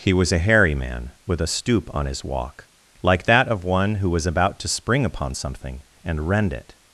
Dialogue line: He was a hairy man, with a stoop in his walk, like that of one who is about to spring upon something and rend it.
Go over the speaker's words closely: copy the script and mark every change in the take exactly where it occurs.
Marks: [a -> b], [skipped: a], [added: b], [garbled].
He was a hairy man, with a stoop [in -> on] his walk, like that of one who [is -> was] about to spring upon something and rend it.